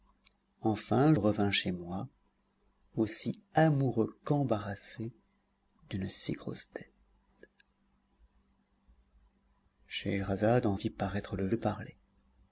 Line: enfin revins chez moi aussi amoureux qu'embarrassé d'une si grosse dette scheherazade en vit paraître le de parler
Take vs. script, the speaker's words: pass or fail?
pass